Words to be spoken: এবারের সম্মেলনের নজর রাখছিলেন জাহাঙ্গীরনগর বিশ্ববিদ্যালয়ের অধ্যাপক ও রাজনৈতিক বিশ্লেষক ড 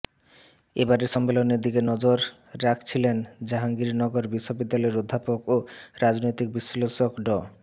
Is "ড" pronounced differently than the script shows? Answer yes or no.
no